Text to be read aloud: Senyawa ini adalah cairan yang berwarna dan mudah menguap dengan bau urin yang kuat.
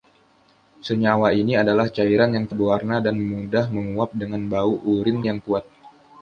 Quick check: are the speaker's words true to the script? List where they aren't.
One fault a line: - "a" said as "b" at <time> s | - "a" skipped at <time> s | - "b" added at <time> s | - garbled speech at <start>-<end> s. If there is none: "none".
none